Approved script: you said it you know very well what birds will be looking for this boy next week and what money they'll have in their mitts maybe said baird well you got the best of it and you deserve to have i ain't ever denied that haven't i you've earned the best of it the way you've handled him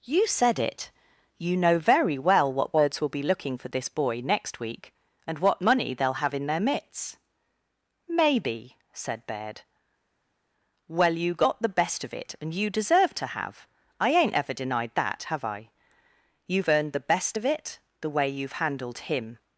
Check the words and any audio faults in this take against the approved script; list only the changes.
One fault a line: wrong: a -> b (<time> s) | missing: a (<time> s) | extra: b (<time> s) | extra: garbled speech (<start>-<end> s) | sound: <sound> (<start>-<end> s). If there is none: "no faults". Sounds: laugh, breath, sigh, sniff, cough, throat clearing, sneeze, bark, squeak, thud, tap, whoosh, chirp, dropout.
wrong: haven't -> have (15.2 s)